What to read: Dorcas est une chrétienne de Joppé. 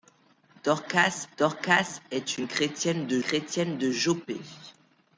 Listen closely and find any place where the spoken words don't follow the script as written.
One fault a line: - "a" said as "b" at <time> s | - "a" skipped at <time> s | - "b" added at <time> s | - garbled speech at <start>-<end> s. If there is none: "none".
- "dorcas" added at 1.4 s
- "chrétienne de" added at 3.2 s